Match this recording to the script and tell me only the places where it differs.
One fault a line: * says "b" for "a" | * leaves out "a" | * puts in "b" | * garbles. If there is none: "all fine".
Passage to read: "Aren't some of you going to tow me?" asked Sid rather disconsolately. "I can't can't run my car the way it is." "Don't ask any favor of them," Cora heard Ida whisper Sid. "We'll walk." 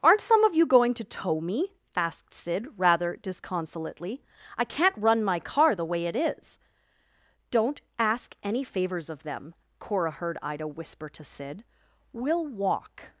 * leaves out "can't"
* says "favors" for "favor"
* puts in "to"